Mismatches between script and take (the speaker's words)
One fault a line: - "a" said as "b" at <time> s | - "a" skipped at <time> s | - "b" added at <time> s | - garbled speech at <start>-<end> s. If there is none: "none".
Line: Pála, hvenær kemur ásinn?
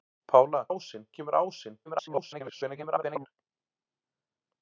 - "hvenær" said as "ásinn" at 0.7 s
- garbled speech at 1.9-3.3 s